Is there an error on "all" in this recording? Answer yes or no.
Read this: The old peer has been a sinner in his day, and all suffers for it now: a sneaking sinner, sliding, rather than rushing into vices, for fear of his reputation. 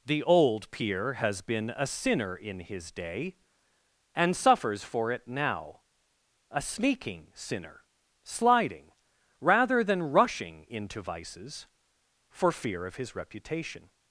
yes